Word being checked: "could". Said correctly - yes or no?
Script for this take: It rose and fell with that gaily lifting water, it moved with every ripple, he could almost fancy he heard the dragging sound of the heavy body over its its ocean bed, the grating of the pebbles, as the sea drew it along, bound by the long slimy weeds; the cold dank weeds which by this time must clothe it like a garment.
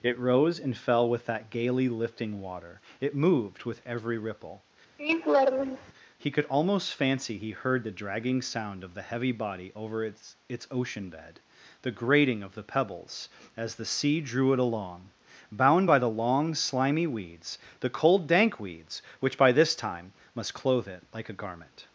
yes